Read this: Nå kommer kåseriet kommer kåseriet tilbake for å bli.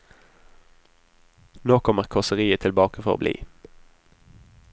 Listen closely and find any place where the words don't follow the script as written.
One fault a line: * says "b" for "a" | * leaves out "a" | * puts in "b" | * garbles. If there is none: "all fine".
* leaves out "kommer kåseriet"